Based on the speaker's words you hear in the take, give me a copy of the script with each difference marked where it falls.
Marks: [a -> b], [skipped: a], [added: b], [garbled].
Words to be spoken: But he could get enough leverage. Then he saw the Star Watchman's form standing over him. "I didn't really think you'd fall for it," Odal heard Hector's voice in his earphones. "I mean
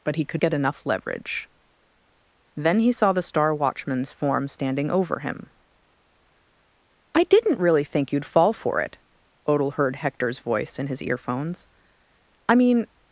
But he could get enough leverage. Then he saw the Star Watchman's form standing over him. "I didn't really think you'd fall for it," Odal heard Hector's voice in his earphones. "I mean